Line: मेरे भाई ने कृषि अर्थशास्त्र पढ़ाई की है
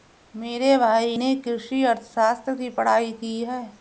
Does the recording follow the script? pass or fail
fail